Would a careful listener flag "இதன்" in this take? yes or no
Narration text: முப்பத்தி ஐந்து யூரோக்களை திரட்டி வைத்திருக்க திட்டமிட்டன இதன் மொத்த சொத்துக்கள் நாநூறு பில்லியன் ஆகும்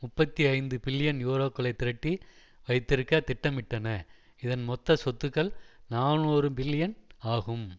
no